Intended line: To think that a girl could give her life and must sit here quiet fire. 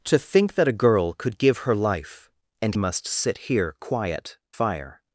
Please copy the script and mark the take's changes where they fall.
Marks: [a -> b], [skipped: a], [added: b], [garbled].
To think that a girl could give her life and must sit here quiet fire.